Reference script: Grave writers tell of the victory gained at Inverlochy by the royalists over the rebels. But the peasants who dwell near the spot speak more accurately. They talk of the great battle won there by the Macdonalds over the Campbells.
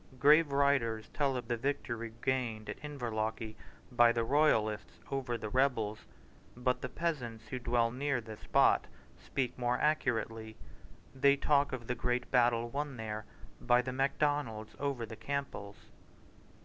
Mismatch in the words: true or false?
false